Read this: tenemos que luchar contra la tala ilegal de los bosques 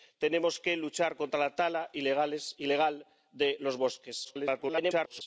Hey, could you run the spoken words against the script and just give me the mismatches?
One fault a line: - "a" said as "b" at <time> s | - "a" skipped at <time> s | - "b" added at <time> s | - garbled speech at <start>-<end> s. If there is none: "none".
- garbled speech at 4.2-5.2 s